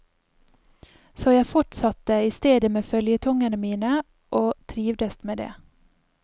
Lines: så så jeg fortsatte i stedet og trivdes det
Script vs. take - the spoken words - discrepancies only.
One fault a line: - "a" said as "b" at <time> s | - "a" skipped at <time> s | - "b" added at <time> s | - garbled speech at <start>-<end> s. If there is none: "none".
- "så" skipped at 1.3 s
- "med føljetongene mine" added at 2.7 s
- "med" added at 5.2 s